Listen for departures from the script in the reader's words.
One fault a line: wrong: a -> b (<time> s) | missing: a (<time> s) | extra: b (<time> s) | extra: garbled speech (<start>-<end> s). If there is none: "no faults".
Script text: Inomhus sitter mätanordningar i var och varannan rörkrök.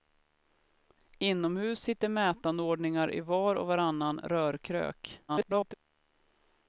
extra: garbled speech (5.3-5.7 s)